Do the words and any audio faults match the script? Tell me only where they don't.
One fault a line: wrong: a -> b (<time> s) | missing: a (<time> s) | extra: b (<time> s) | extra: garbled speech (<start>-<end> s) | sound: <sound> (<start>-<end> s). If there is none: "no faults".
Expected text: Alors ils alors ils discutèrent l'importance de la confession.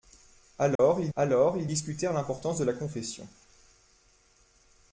sound: dropout (0.8-0.8 s)